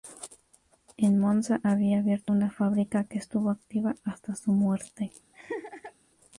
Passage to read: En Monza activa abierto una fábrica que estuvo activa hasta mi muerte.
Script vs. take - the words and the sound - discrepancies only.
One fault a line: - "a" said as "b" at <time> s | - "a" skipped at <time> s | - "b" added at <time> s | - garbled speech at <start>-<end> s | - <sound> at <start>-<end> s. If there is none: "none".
- "activa" said as "había" at 1.6 s
- "mi" said as "su" at 4.4 s
- laugh at 5.3-5.9 s